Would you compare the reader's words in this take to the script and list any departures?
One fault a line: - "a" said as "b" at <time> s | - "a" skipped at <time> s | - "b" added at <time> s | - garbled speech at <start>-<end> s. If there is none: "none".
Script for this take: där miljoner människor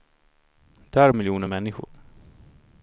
none